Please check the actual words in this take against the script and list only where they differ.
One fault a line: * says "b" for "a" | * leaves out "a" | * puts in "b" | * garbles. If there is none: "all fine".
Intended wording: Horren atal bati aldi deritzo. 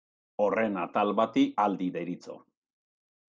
all fine